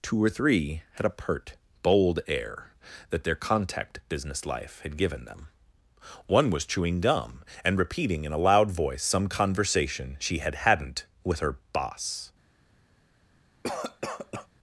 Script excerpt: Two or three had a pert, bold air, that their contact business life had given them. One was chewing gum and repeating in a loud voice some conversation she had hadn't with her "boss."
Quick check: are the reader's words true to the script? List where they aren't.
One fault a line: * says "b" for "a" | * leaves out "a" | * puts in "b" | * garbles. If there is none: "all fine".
all fine